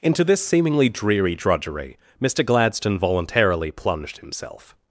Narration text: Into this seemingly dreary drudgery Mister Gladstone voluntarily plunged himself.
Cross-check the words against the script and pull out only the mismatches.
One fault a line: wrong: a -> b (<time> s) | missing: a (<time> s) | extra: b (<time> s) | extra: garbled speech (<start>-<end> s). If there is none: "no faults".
no faults